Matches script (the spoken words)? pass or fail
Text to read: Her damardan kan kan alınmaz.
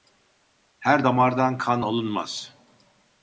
fail